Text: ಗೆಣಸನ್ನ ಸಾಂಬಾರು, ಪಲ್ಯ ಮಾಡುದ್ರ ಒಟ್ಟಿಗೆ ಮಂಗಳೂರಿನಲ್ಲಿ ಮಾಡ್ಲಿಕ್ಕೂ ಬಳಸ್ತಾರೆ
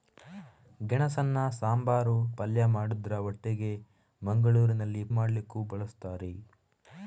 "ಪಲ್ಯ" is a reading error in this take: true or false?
false